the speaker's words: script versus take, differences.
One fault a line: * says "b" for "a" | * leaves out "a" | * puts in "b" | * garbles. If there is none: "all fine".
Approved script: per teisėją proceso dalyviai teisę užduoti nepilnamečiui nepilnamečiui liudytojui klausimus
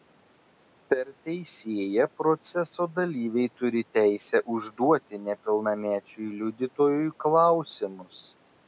* puts in "turi"
* leaves out "nepilnamečiui"